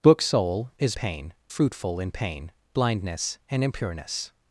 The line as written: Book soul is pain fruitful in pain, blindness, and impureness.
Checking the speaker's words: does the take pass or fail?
pass